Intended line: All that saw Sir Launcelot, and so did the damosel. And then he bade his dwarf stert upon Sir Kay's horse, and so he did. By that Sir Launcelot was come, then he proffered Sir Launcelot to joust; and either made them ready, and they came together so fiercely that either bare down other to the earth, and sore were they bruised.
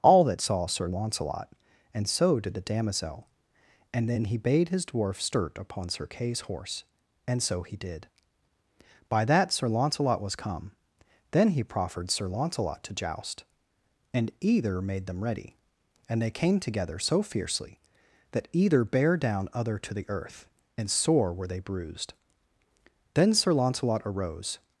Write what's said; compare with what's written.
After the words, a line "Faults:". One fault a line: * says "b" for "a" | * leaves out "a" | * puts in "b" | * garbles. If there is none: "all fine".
All that saw Sir Launcelot, and so did the damosel. And then he bade his dwarf stert upon Sir Kay's horse, and so he did. By that Sir Launcelot was come, then he proffered Sir Launcelot to joust; and either made them ready, and they came together so fiercely that either bare down other to the earth, and sore were they bruised. Then Sir Launcelot arose
Faults:
* puts in "Then Sir Launcelot arose"